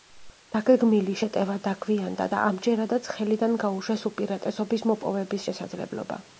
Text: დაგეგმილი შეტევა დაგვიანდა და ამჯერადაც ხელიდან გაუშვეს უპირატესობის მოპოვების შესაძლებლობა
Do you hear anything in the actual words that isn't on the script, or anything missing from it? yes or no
no